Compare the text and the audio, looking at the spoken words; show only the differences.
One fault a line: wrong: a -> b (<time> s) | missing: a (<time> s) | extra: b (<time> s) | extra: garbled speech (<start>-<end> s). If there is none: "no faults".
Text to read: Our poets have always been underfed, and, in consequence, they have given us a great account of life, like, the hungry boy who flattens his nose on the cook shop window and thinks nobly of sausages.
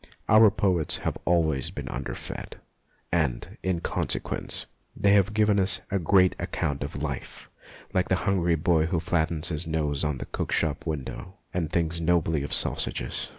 no faults